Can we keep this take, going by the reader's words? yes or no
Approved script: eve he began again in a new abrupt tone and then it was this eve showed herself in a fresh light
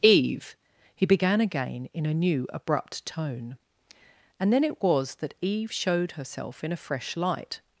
no